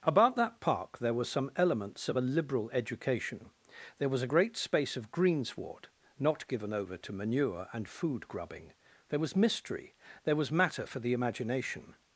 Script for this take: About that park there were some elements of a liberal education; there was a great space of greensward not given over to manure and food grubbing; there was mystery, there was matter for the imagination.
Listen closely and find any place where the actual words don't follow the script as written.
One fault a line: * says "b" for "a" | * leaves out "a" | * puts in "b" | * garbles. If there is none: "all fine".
all fine